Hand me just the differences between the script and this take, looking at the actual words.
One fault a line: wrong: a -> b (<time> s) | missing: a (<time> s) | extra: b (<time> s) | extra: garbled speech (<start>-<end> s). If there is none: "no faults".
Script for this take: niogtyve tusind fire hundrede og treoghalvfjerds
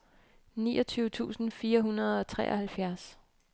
no faults